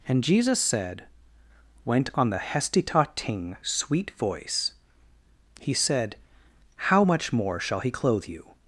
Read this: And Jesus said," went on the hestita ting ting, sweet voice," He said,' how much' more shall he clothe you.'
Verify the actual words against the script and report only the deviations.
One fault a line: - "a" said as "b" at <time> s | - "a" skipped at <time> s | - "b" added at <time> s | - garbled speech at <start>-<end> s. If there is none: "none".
- "ting" skipped at 3.6 s